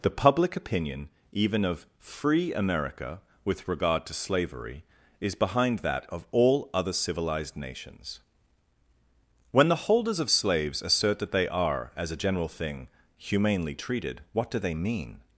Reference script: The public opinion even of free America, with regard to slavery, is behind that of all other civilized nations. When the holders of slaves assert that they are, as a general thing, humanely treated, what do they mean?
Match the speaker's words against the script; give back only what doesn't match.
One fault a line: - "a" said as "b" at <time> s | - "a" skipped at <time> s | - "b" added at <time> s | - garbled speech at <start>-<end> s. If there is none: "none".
none